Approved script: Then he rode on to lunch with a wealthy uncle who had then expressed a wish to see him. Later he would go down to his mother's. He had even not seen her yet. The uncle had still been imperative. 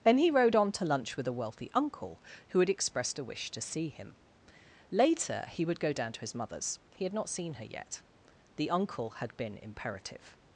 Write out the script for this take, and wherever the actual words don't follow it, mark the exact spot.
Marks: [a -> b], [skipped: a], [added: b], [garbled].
Then he rode on to lunch with a wealthy uncle who had [skipped: then] expressed a wish to see him. Later he would go down to his mother's. He had [skipped: even] not seen her yet. The uncle had [skipped: still] been imperative.